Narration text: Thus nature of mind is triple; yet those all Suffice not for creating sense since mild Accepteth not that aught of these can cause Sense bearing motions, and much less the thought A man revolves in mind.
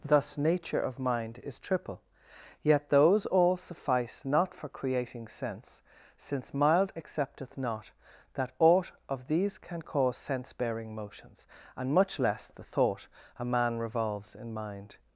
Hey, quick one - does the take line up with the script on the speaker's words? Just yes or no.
yes